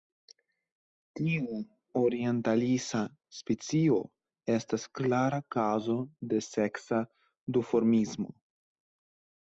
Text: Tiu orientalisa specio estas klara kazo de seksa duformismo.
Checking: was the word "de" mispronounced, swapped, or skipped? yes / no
no